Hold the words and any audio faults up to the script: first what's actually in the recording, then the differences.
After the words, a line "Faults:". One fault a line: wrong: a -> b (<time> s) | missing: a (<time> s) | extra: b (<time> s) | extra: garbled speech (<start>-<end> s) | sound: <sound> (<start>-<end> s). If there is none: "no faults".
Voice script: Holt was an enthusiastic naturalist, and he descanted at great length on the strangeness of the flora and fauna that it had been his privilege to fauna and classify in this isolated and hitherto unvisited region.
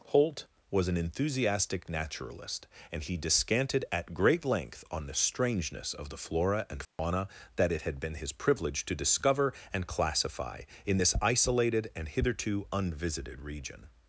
Holt was an enthusiastic naturalist, and he descanted at great length on the strangeness of the flora and fauna that it had been his privilege to discover and classify in this isolated and hitherto unvisited region.
Faults:
sound: dropout (6.8-7.0 s)
wrong: fauna -> discover (8.9 s)